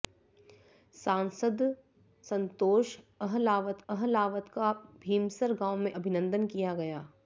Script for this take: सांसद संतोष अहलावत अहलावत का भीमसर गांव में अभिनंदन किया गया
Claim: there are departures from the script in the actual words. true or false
false